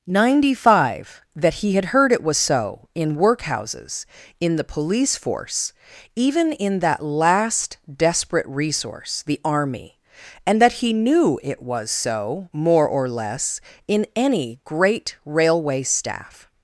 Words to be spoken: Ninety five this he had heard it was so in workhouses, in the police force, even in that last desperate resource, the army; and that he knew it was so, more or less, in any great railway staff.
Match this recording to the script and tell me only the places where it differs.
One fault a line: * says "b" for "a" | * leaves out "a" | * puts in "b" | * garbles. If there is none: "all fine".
* says "that" for "this"